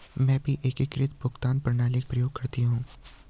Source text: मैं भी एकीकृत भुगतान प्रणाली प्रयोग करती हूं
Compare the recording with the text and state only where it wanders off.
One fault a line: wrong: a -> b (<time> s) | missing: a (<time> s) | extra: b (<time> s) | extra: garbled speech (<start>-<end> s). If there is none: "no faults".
no faults